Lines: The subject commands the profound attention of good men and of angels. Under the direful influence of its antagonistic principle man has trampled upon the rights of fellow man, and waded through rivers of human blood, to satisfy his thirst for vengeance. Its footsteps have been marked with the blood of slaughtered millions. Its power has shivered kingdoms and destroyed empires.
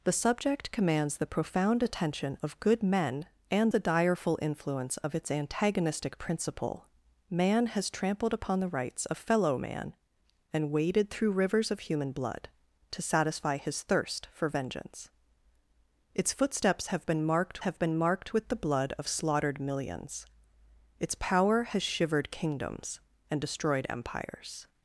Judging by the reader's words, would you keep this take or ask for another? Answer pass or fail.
fail